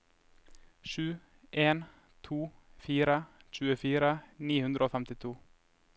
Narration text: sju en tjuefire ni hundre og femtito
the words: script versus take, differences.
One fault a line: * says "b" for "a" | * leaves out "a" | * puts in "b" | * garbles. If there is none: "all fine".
* puts in "to fire"